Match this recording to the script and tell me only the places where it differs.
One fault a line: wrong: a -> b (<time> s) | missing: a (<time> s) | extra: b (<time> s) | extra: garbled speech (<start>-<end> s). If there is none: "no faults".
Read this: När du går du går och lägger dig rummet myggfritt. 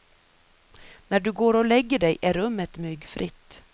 missing: du går (1.5 s)
extra: är (2.2 s)